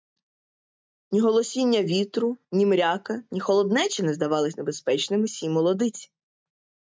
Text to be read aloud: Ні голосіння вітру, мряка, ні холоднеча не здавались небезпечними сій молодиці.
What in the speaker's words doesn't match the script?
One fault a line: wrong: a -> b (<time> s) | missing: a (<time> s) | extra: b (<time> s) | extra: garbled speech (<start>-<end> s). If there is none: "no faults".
extra: ні (2.5 s)